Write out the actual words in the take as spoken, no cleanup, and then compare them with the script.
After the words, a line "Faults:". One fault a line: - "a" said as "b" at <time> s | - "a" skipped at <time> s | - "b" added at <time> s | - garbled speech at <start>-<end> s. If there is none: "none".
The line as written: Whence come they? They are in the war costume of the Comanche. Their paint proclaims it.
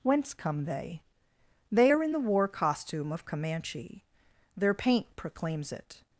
Whence come they? They are in the war costume of Comanche. Their paint proclaims it.
Faults:
- "the" skipped at 3.3 s